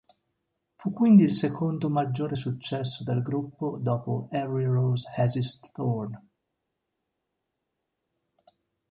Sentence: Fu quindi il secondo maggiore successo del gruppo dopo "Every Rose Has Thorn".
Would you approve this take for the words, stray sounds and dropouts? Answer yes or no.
no